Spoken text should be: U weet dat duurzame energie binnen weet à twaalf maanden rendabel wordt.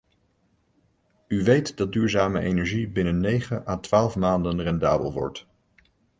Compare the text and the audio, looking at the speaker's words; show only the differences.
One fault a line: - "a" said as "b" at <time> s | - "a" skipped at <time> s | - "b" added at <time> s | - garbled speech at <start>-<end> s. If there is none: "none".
- "weet" said as "negen" at 3.2 s